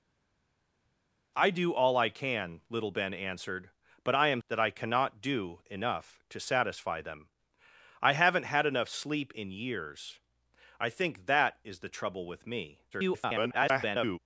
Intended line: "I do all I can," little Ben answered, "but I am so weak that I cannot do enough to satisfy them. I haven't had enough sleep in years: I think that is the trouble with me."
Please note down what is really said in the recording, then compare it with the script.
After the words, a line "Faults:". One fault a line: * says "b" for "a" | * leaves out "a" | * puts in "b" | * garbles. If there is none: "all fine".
"I do all I can," little Ben answered, "but I am that I cannot do enough to satisfy them. I haven't had enough sleep in years: I think that is the trouble with me." [garbled]
Faults:
* leaves out "so weak"
* garbles